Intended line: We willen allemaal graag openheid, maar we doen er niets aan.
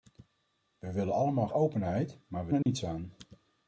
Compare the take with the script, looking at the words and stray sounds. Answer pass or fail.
fail